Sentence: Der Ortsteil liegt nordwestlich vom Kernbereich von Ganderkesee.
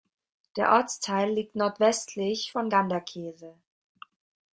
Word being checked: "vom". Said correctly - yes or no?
no